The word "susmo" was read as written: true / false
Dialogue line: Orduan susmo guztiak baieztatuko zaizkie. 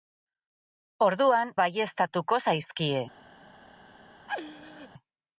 false